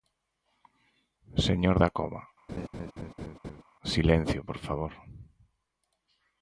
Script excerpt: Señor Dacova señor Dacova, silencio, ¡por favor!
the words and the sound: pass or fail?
fail